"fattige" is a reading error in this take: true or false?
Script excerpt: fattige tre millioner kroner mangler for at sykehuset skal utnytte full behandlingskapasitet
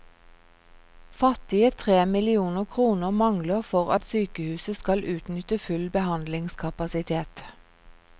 false